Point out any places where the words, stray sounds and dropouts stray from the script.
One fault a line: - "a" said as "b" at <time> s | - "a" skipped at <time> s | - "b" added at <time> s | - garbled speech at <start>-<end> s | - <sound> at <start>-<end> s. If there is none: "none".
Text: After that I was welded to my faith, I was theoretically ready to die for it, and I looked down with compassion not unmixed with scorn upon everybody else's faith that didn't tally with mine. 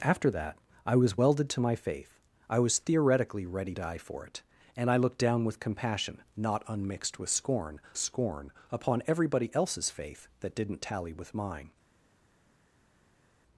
- "to" skipped at 3.7 s
- "scorn" added at 8.0 s